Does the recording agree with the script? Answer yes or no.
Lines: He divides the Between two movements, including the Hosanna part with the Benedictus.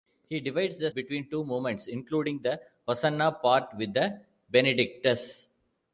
yes